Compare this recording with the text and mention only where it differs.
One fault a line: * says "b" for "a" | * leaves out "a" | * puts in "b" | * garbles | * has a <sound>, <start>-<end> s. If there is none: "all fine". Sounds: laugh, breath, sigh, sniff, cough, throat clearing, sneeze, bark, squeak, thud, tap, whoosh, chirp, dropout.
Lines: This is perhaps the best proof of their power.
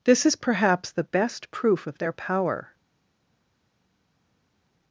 all fine